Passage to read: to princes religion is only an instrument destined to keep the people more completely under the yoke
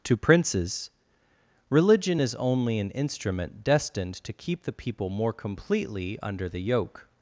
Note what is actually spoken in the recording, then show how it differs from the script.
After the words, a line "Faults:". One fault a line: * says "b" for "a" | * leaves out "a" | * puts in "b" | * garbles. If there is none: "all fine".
to princes religion is only an instrument destined to keep the people more completely under the yoke
Faults:
all fine